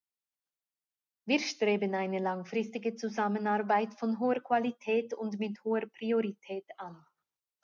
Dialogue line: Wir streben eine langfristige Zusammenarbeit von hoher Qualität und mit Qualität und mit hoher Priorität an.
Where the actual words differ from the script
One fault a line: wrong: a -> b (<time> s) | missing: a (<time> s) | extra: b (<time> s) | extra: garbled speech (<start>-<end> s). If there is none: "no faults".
missing: Qualität und mit (5.6 s)